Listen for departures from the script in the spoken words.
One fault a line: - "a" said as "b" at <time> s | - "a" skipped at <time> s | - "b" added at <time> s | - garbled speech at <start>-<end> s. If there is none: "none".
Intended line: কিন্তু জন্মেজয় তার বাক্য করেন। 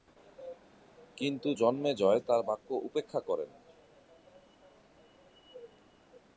- "উপেক্ষা" added at 2.9 s